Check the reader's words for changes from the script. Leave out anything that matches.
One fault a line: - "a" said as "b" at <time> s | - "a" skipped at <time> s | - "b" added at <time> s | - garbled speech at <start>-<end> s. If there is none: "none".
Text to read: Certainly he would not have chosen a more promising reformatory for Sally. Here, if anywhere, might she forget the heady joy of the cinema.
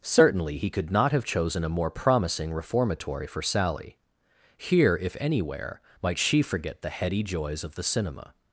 - "would" said as "could" at 0.7 s
- "joy" said as "joys" at 7.2 s